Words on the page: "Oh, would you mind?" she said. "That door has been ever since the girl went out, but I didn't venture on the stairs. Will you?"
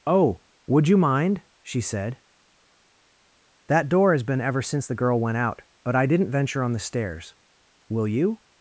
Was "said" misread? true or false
false